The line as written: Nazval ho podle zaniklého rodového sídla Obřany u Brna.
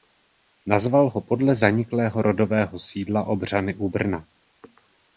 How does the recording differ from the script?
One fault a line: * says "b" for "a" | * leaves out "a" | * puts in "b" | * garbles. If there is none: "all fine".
all fine